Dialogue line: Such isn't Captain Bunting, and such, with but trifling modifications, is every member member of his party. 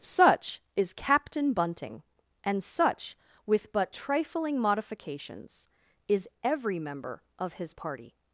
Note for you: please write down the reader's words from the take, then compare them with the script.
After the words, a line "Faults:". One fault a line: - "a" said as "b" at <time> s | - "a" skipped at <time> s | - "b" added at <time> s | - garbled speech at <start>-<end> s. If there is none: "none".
Such is Captain Bunting, and such, with but trifling modifications, is every member of his party.
Faults:
- "isn't" said as "is" at 0.8 s
- "member" skipped at 7.2 s